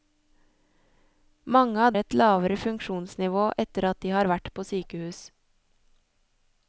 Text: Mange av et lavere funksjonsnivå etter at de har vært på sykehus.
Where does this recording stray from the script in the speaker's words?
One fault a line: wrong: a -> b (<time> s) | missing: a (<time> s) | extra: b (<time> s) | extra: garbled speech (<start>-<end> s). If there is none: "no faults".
no faults